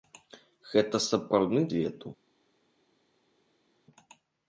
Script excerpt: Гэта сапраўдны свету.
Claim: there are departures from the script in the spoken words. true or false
false